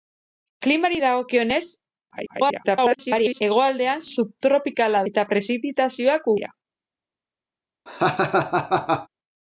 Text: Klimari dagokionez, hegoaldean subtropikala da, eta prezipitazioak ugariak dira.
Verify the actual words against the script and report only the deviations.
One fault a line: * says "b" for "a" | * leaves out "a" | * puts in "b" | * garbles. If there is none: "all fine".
* garbles
* leaves out "da"
* leaves out "ugariak"